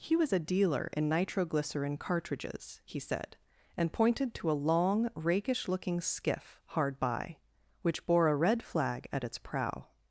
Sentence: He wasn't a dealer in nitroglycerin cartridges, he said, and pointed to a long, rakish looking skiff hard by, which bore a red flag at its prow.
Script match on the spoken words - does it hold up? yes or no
no